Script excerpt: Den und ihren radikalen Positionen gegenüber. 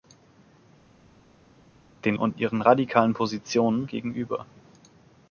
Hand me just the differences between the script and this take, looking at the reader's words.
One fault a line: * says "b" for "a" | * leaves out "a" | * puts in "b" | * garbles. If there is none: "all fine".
all fine